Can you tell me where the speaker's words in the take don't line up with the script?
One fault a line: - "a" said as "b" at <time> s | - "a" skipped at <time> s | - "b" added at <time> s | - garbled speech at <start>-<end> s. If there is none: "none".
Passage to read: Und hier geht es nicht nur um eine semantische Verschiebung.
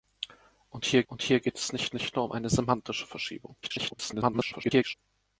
- "und hier" added at 1.1 s
- "nicht" added at 1.9 s
- garbled speech at 3.6-4.9 s